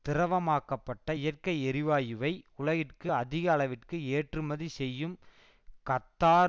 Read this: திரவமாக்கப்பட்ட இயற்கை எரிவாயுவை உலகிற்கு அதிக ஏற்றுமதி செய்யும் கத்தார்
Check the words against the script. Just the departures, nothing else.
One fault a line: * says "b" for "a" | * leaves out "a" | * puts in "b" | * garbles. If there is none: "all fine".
* puts in "அளவிற்கு"